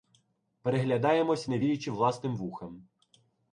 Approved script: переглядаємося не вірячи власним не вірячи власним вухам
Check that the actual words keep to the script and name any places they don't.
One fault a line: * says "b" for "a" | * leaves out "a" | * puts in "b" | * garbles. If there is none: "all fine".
* leaves out "не вірячи власним"